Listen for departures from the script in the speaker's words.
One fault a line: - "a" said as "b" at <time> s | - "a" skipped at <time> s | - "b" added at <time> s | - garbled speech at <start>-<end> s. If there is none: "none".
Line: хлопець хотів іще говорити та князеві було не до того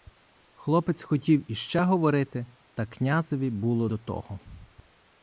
- "не" skipped at 3.9 s